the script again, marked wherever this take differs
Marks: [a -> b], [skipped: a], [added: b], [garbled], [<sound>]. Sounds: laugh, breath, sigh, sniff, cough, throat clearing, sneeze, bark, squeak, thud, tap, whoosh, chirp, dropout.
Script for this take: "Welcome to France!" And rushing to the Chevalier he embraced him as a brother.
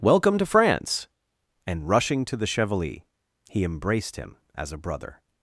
"Welcome to France!" And rushing to the Chevalier he embraced him as a brother.